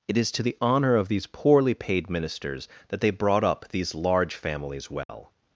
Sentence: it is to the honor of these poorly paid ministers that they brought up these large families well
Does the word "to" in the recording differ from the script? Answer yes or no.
no